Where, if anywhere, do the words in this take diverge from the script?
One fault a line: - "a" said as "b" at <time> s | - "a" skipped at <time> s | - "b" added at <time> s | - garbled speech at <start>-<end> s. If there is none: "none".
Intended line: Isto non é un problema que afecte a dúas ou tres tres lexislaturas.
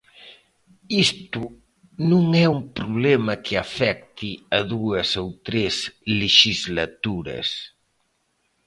- "tres" skipped at 5.7 s